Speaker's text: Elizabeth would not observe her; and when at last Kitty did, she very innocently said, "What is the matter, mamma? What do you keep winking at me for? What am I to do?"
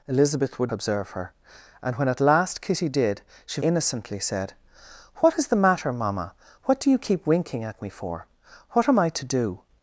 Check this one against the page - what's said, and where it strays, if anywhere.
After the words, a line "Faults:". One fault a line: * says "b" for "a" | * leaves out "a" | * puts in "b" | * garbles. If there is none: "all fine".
Elizabeth would observe her; and when at last Kitty did, she innocently said, "What is the matter, mamma? What do you keep winking at me for? What am I to do?"
Faults:
* leaves out "not"
* leaves out "very"